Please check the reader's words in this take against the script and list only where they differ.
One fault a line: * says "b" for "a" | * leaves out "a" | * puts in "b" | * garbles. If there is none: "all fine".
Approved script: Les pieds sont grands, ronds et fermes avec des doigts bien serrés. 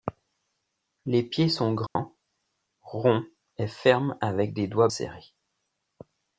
* leaves out "bien"